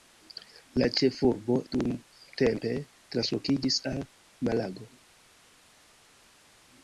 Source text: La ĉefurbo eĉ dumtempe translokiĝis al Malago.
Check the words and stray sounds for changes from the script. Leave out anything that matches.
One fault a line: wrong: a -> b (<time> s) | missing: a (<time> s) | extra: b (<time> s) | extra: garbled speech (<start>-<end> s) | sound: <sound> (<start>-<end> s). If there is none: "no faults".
missing: eĉ (1.6 s)